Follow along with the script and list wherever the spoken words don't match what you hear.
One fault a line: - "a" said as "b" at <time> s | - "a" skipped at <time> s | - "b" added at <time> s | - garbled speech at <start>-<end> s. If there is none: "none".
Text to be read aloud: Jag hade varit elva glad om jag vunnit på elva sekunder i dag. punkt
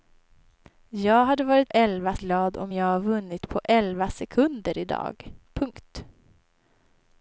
none